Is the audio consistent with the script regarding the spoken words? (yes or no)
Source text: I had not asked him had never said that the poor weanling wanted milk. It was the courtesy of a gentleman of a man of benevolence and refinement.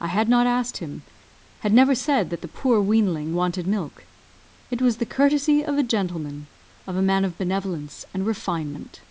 yes